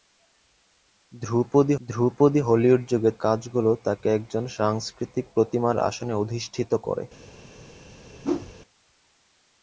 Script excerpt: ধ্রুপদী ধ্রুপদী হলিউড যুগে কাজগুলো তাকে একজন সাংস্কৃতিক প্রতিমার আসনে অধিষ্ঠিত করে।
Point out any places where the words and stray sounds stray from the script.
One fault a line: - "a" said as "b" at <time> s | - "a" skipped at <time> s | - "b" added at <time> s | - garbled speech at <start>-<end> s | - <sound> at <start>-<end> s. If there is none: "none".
- whoosh at 8.2-8.5 s